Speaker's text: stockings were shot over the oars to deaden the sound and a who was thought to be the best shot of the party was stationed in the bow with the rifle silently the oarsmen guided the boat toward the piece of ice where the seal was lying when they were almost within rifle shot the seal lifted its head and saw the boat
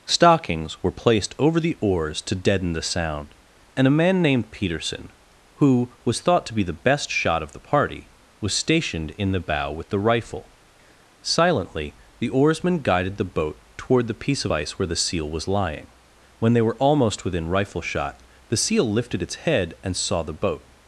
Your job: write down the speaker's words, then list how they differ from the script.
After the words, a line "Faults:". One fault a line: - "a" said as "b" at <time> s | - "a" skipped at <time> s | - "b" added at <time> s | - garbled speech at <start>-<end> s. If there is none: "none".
stockings were placed over the oars to deaden the sound and a man named peterson who was thought to be the best shot of the party was stationed in the bow with the rifle silently the oarsmen guided the boat toward the piece of ice where the seal was lying when they were almost within rifle shot the seal lifted its head and saw the boat
Faults:
- "shot" said as "placed" at 0.9 s
- "man named peterson" added at 4.0 s